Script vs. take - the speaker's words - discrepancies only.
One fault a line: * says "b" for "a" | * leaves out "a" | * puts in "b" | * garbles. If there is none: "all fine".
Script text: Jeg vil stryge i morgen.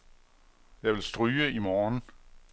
all fine